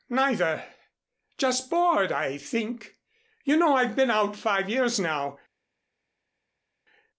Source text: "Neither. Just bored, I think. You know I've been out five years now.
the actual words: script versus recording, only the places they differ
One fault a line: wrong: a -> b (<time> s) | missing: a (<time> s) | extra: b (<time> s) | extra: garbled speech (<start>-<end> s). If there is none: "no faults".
no faults